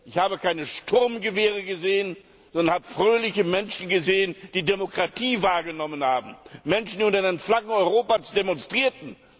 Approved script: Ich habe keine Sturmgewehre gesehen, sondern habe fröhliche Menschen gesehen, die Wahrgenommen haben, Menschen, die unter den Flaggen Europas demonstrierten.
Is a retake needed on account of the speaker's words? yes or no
yes